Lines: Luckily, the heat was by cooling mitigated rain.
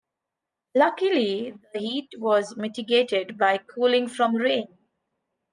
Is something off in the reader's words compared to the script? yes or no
yes